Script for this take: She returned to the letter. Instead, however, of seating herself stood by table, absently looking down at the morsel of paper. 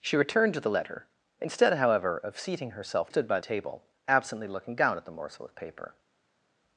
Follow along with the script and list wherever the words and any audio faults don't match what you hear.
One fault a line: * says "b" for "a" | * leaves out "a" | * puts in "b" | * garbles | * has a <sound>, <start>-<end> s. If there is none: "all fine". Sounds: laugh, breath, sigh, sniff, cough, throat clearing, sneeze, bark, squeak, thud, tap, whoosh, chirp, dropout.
all fine